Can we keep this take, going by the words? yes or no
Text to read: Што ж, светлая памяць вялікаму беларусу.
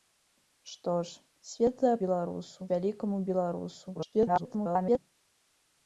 no